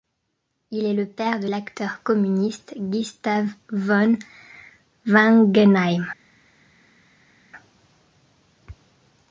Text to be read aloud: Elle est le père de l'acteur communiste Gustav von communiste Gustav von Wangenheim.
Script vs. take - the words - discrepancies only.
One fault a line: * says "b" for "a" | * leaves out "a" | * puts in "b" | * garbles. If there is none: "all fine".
* says "Il" for "Elle"
* leaves out "communiste Gustav von"